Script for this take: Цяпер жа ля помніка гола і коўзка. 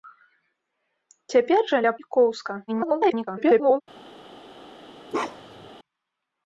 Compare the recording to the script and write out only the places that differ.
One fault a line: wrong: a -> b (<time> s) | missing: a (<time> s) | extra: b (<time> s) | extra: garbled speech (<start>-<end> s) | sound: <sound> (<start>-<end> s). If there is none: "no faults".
missing: помніка гола (1.9 s)
extra: garbled speech (2.7-3.8 s)
sound: bark (5.1-5.7 s)